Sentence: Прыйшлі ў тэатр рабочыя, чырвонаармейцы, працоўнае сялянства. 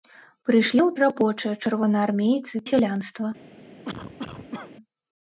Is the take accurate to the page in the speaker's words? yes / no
no